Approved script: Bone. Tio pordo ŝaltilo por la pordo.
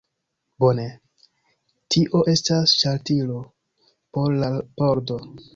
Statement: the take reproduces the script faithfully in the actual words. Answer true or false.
false